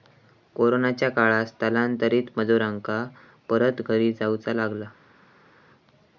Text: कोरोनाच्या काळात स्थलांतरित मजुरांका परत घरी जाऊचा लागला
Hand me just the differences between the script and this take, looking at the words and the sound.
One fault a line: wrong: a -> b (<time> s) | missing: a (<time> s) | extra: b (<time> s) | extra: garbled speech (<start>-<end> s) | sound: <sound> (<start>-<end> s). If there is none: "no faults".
no faults